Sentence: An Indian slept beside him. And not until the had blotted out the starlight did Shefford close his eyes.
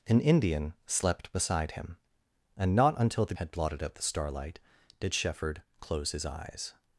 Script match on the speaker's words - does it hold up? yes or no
yes